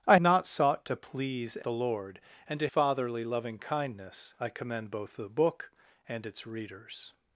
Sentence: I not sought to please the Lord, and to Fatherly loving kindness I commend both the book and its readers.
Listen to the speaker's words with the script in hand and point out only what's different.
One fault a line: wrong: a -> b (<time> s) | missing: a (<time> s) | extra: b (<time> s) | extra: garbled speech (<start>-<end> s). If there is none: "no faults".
no faults